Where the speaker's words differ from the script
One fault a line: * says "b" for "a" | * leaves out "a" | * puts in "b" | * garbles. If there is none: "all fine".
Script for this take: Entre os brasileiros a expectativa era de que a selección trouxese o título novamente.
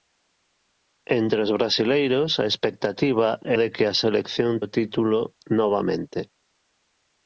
* leaves out "era"
* leaves out "trouxese"